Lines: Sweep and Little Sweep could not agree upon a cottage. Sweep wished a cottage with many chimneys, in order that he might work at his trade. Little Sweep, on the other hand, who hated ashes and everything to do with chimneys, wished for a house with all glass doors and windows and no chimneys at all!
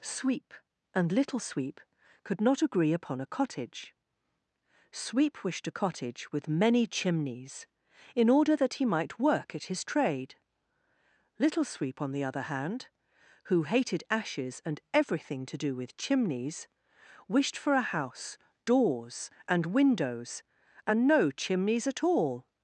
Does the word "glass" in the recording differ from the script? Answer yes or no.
yes